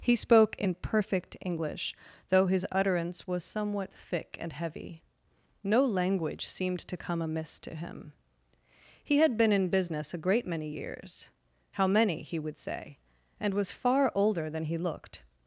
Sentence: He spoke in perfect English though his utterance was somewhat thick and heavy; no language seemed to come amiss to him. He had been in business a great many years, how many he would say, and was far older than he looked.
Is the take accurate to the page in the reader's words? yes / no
yes